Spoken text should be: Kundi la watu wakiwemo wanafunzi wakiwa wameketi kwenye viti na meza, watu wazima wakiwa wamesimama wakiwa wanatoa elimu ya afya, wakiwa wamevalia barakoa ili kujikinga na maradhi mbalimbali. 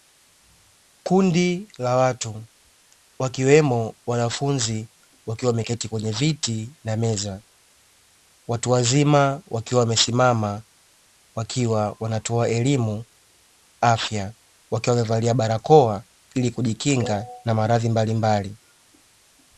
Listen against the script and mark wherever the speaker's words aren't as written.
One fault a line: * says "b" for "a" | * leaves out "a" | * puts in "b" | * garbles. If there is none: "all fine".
* leaves out "ya"